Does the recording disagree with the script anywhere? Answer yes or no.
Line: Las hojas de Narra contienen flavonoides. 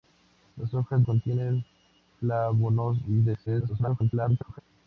yes